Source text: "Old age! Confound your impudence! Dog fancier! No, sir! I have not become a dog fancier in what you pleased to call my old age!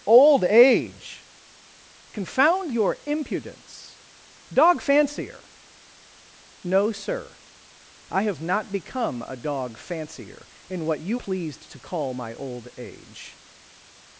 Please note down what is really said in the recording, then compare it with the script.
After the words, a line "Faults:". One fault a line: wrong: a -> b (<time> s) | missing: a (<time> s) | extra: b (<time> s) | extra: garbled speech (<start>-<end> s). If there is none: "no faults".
"Old age! Confound your impudence! Dog fancier! No, sir! I have not become a dog fancier in what you pleased to call my old age!
Faults:
no faults